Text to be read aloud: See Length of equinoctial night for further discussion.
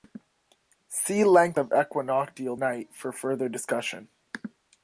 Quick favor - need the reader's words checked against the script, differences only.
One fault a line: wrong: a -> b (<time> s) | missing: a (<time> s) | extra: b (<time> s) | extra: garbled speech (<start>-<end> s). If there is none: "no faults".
no faults